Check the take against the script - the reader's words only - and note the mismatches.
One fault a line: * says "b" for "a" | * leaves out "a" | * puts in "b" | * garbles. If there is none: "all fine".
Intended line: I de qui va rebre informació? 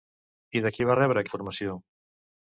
all fine